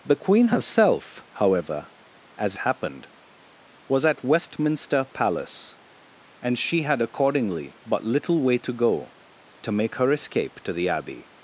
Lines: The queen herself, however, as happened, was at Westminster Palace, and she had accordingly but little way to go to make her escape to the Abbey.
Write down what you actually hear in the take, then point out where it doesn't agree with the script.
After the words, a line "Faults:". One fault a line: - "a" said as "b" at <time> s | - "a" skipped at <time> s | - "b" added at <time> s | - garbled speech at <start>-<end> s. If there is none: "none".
The queen herself, however, as happened, was at Westminster Palace, and she had accordingly but little way to go to make her escape to the Abbey.
Faults:
none